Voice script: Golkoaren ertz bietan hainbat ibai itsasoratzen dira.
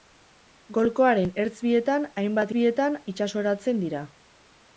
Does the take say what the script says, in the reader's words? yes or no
no